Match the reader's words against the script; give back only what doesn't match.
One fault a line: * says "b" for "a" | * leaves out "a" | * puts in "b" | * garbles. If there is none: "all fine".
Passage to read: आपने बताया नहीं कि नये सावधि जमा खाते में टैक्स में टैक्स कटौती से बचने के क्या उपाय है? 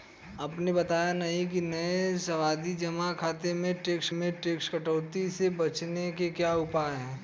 all fine